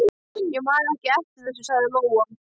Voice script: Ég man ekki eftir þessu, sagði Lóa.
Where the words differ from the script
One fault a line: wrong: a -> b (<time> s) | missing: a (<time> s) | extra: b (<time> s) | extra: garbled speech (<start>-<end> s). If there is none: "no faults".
no faults